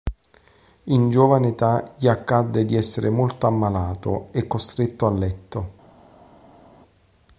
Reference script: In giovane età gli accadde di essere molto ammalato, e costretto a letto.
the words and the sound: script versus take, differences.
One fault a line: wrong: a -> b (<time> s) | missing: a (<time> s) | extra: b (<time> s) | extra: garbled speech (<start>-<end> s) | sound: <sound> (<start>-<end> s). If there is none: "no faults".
no faults